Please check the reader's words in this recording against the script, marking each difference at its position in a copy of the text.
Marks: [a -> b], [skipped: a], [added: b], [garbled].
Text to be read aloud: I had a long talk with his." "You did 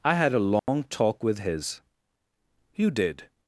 I had a long talk with his." "You did